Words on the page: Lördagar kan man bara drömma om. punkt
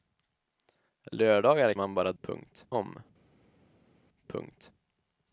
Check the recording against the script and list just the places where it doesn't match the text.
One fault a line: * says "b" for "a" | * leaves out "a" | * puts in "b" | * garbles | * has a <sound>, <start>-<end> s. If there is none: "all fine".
* leaves out "kan"
* says "punkt" for "drömma"